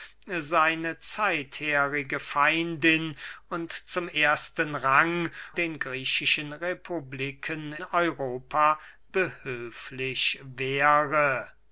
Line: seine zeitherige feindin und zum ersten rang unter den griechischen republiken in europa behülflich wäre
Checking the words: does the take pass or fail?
fail